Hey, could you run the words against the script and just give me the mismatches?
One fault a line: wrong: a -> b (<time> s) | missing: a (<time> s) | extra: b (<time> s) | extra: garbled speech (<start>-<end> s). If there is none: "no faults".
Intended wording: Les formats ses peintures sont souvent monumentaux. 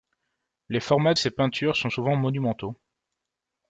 no faults